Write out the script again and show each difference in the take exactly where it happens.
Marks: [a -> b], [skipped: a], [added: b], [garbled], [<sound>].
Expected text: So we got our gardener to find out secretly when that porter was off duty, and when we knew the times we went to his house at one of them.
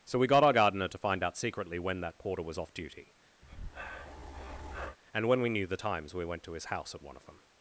So we got our gardener to find out secretly when that porter was off duty, [breath] and when we knew the times we went to his house at one of them.